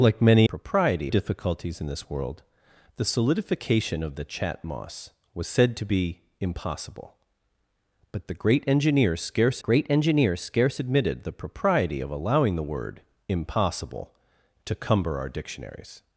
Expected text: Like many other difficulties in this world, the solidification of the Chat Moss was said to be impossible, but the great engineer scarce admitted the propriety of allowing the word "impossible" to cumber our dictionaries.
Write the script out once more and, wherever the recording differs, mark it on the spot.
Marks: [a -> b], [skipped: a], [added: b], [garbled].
Like many [other -> propriety] difficulties in this world, the solidification of the Chat Moss was said to be impossible, but the great engineer scarce [added: great engineer scarce] admitted the propriety of allowing the word "impossible" to cumber our dictionaries.